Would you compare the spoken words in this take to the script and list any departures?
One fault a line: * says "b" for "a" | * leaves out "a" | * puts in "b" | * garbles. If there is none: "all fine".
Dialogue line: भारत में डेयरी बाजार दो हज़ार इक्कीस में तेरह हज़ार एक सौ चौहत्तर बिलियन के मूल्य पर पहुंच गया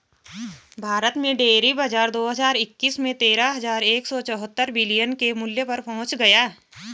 all fine